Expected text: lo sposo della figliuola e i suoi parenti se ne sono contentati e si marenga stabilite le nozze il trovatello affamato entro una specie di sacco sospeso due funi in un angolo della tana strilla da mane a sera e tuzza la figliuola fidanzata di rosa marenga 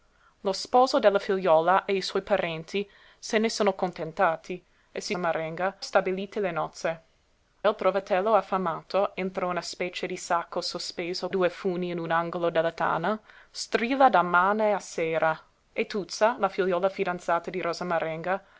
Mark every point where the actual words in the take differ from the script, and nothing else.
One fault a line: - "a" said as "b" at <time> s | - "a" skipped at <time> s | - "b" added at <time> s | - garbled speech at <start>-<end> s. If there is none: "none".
none